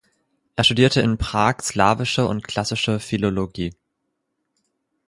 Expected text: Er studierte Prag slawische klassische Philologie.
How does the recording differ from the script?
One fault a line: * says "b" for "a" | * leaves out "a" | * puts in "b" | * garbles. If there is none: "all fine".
* puts in "in"
* puts in "und"